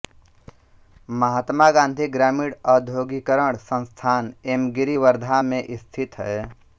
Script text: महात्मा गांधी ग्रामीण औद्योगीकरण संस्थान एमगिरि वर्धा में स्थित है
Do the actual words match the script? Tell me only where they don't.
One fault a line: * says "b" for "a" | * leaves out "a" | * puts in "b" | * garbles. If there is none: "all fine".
all fine